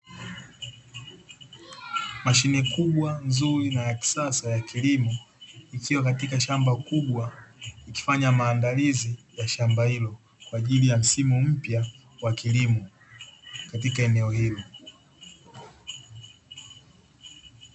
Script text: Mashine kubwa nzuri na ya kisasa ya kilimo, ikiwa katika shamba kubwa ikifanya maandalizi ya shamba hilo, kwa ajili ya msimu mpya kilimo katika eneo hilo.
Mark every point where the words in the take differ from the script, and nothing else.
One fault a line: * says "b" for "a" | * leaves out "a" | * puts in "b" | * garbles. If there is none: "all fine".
* puts in "wa"